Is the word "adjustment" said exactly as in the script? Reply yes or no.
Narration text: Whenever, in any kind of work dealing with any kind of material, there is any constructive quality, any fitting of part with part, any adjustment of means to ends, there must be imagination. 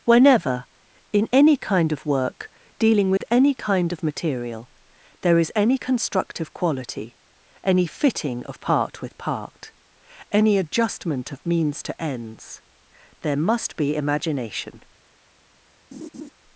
yes